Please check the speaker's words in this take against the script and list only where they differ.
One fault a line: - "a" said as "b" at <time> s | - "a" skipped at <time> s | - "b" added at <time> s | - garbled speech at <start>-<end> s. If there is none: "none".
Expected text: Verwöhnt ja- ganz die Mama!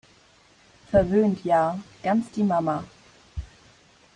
none